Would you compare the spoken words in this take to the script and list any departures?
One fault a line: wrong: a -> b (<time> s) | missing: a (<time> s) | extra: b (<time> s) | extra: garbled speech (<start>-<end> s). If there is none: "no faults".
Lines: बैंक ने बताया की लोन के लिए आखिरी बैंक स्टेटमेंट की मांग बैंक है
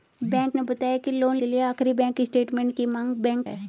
no faults